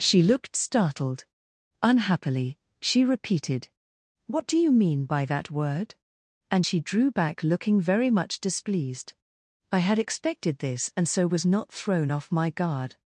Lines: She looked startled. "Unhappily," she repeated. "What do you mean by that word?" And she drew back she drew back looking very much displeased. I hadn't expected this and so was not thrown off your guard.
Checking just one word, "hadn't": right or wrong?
wrong